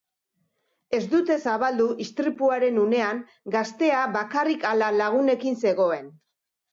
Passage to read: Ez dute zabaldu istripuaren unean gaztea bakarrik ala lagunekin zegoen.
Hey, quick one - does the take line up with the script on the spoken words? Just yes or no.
yes